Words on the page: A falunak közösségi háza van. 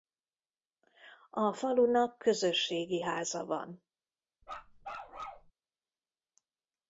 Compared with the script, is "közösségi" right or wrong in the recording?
right